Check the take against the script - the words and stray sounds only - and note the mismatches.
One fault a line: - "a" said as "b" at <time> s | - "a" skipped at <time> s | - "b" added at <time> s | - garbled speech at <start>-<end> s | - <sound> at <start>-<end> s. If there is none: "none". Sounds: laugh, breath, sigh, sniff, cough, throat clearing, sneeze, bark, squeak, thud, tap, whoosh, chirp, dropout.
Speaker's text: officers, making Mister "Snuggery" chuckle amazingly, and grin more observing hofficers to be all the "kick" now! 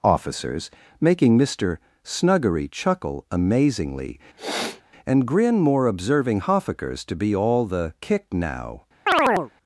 - sniff at 4.4-4.8 s
- chirp at 9.1-9.5 s